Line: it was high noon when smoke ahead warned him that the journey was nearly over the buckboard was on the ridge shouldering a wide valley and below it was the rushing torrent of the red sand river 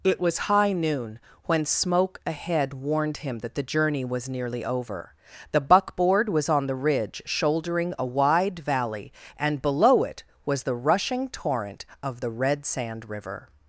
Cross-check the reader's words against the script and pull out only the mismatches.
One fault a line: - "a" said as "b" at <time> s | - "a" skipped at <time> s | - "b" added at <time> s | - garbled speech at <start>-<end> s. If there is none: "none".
none